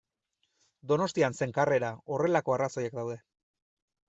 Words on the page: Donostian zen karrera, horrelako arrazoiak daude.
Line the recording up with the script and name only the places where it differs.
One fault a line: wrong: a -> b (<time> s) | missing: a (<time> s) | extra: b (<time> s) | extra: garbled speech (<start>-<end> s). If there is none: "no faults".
no faults